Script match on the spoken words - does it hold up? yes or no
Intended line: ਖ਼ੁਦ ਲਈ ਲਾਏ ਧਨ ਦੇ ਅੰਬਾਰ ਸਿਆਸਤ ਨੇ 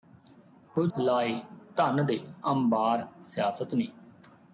no